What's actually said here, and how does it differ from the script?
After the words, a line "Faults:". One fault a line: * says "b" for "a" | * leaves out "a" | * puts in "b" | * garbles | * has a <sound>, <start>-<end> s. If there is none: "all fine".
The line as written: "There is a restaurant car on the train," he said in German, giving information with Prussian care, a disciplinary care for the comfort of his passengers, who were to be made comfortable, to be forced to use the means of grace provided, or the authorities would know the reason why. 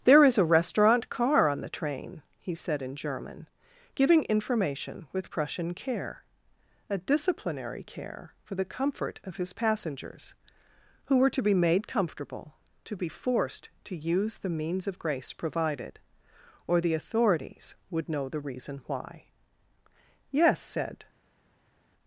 "There is a restaurant car on the train," he said in German, giving information with Prussian care, a disciplinary care for the comfort of his passengers, who were to be made comfortable, to be forced to use the means of grace provided, or the authorities would know the reason why. "Yes," said
Faults:
* puts in "Yes said"